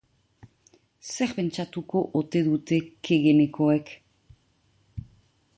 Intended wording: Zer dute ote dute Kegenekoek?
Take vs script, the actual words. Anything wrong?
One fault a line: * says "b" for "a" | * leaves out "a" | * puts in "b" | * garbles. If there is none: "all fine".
* says "pentsatuko" for "dute"